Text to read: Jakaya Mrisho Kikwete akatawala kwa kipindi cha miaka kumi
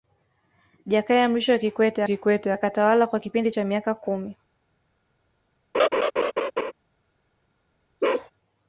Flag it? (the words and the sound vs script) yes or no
yes